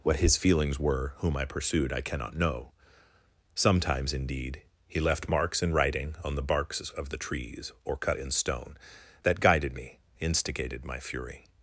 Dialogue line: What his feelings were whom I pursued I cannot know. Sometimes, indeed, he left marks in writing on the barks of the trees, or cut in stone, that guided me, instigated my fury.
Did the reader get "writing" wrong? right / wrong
right